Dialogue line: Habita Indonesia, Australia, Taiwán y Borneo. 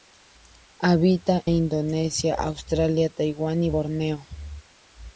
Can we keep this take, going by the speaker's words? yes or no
yes